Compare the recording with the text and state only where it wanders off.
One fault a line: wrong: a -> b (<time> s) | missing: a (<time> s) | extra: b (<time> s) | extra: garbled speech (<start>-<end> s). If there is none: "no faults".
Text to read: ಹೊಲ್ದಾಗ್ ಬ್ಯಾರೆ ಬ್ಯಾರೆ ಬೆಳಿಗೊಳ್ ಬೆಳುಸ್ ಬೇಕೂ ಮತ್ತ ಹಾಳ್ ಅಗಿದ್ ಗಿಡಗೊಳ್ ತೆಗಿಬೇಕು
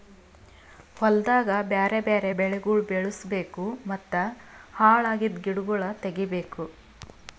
no faults